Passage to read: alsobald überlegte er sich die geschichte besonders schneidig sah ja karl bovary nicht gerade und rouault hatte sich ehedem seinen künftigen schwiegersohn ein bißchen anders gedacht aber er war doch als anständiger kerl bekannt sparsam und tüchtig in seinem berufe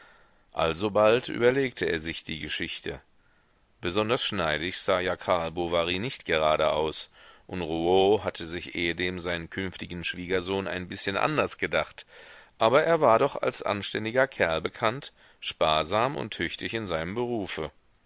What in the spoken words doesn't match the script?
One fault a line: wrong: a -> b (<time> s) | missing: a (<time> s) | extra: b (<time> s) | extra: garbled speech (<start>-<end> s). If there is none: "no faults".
extra: aus (6.7 s)